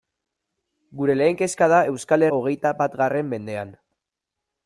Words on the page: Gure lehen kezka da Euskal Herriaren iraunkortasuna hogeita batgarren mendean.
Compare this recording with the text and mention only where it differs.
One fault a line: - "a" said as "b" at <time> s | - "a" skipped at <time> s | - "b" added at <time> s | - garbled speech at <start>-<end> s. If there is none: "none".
- "Herriaren iraunkortasuna" skipped at 2.2 s